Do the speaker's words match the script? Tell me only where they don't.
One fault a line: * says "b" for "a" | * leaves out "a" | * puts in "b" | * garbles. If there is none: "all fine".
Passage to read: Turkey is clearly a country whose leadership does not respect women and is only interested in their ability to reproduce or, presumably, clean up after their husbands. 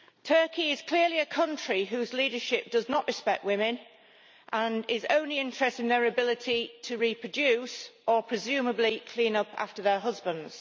all fine